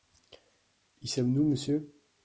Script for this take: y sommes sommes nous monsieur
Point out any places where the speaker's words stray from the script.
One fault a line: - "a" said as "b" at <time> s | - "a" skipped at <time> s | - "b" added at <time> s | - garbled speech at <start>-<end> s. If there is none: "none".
- "sommes" skipped at 1.3 s